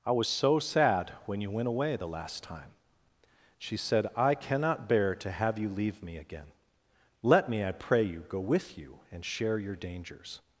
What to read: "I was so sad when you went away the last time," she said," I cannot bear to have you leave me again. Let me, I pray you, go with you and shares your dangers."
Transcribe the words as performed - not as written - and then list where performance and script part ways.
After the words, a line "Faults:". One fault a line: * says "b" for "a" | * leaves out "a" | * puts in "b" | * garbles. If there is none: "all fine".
"I was so sad when you went away the last time," she said," I cannot bear to have you leave me again. Let me, I pray you, go with you and share your dangers."
Faults:
* says "share" for "shares"